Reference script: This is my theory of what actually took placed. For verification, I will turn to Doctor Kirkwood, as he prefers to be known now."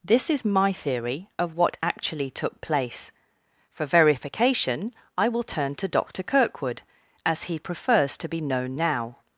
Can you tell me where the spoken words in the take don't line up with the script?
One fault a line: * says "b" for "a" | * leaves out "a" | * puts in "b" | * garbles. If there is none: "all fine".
* says "place" for "placed"